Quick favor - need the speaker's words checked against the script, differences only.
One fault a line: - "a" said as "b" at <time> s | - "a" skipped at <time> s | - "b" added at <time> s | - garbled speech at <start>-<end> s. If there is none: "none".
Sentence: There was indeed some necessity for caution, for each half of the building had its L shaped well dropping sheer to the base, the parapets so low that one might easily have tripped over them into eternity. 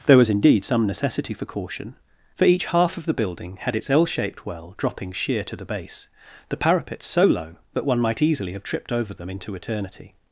none